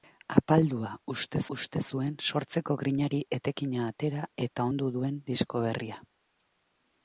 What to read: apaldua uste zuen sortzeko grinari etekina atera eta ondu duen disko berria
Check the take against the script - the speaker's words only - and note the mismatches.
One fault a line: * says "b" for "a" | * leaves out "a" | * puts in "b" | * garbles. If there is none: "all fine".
* puts in "uste"